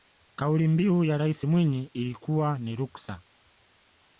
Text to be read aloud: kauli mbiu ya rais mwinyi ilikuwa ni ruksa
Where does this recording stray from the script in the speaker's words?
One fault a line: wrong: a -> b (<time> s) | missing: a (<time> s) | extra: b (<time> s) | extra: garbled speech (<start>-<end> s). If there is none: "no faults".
no faults